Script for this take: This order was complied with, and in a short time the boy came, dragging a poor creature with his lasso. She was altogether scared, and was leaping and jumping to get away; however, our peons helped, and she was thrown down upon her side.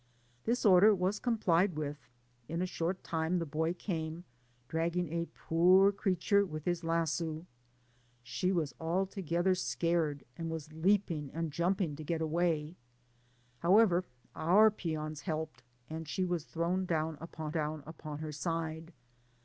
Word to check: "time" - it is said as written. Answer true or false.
true